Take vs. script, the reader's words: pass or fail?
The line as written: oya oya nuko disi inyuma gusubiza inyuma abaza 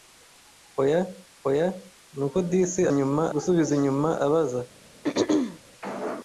pass